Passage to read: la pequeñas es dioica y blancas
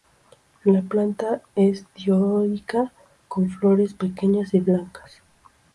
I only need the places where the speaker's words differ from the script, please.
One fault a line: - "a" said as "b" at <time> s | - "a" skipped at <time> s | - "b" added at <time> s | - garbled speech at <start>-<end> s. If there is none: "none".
- "pequeñas" said as "planta" at 0.8 s
- "con flores pequeñas" added at 3.3 s